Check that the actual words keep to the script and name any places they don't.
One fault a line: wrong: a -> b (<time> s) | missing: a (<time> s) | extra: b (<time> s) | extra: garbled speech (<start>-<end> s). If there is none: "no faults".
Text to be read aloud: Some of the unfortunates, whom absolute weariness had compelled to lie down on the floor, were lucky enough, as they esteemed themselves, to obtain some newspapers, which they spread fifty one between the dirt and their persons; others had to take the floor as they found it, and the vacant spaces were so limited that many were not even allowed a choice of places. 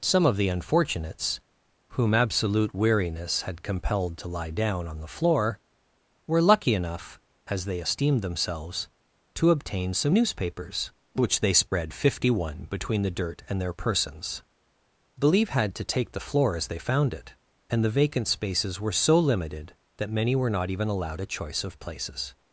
wrong: others -> believe (15.2 s)